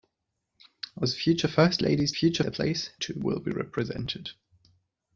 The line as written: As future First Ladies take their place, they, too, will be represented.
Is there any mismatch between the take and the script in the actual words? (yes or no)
yes